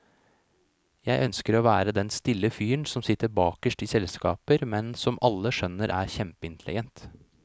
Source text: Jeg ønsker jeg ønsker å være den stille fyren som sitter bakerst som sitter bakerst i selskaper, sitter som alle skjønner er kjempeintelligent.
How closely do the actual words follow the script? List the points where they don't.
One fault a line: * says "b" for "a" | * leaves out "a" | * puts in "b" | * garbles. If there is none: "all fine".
* leaves out "jeg ønsker"
* leaves out "som sitter bakerst"
* says "men" for "sitter"